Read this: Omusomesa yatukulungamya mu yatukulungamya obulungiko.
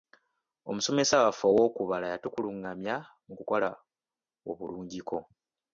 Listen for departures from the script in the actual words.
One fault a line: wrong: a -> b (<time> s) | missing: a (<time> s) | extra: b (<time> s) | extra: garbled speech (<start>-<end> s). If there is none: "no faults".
extra: waffe ow'okubala (1.2 s)
wrong: yatukulungamya -> kukola (3.4 s)